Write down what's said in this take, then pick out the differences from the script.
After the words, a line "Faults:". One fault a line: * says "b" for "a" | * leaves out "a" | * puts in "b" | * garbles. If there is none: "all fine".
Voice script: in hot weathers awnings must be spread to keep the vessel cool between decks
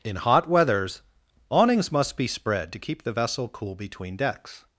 in hot weathers awnings must be spread to keep the vessel cool between decks
Faults:
all fine